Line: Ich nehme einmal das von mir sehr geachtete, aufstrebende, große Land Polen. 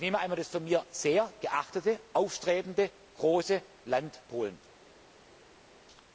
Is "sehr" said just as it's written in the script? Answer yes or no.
yes